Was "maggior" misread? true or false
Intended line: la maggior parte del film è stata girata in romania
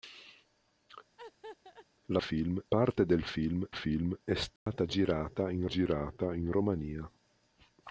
true